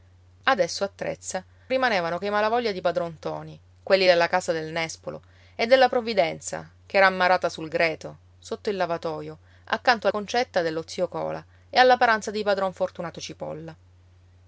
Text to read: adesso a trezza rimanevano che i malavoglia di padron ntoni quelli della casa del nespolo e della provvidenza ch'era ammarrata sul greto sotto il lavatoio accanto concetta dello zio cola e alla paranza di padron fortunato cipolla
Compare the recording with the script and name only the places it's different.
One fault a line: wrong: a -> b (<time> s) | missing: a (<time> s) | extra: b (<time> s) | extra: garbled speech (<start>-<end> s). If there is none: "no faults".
no faults